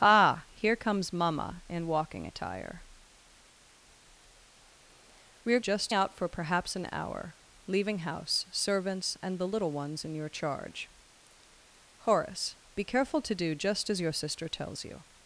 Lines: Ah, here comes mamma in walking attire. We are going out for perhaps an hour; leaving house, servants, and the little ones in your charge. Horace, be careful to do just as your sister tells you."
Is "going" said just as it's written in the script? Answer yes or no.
no